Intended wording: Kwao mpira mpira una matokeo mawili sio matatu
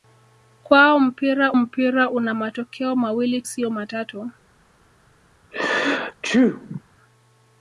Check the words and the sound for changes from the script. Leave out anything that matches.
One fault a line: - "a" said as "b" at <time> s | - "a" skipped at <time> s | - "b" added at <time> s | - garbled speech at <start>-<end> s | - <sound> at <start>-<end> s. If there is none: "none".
- sneeze at 5.5-6.8 s